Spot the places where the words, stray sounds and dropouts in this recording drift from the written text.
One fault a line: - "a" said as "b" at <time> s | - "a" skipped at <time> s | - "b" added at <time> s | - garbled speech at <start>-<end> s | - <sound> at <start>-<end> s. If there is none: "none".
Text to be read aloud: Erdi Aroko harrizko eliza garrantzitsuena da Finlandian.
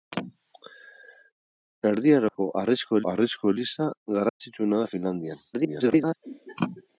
- dropout at 2.3-2.3 s
- "harrizko" added at 3.1 s
- dropout at 4.3-4.4 s
- garbled speech at 5.5-6.2 s